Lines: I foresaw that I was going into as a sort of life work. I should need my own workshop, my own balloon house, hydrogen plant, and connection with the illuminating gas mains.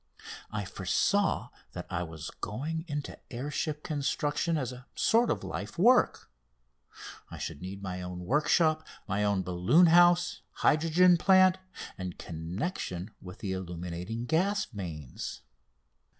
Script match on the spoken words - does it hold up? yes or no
no